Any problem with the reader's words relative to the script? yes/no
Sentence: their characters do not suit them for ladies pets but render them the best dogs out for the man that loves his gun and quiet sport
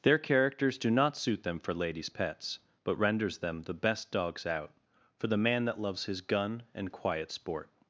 yes